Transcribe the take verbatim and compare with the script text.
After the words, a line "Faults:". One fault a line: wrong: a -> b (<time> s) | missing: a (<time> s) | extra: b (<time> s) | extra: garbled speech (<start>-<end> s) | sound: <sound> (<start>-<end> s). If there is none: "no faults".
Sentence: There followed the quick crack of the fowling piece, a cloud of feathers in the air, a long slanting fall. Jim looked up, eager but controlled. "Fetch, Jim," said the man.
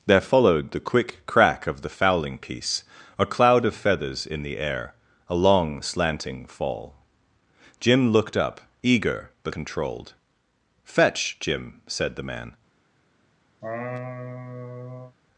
There followed the quick crack of the fowling piece, a cloud of feathers in the air, a long slanting fall. Jim looked up, eager but controlled. "Fetch, Jim," said the man.
Faults:
sound: laugh (13.6-15.2 s)